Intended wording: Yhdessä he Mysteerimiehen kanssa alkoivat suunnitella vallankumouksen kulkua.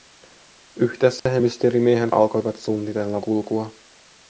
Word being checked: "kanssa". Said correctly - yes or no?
no